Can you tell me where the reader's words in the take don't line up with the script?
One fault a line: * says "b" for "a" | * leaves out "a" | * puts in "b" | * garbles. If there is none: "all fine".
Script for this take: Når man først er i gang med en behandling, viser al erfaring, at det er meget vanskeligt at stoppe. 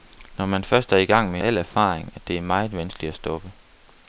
* leaves out "en behandling viser"